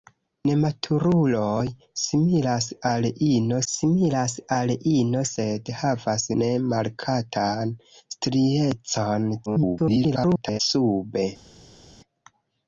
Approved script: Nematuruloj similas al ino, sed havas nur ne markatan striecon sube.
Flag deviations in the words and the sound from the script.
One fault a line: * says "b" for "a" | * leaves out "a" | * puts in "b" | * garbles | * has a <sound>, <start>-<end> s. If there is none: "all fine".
* puts in "similas al ino"
* leaves out "nur"
* garbles